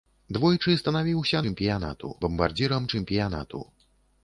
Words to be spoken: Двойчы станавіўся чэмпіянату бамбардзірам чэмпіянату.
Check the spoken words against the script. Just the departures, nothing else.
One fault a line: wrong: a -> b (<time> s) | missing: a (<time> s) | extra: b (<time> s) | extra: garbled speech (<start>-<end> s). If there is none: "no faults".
no faults